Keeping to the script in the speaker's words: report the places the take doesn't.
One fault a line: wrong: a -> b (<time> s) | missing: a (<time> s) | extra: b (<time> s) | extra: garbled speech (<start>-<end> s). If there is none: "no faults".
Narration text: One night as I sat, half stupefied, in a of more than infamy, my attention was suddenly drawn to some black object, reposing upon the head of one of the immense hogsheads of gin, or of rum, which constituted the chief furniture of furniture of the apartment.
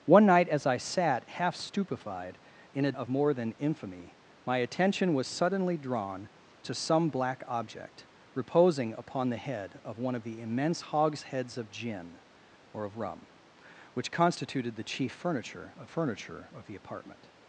no faults